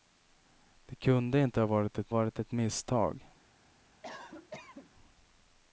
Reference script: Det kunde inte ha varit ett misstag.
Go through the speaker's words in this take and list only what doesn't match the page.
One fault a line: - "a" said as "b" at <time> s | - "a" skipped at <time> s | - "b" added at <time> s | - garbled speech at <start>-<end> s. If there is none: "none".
- "varit ett" added at 2.1 s